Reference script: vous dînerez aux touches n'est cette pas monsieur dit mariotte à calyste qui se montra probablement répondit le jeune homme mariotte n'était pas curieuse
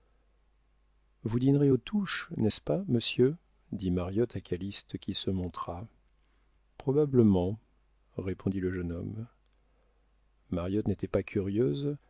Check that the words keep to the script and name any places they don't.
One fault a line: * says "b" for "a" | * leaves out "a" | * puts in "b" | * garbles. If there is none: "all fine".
* says "ce" for "cette"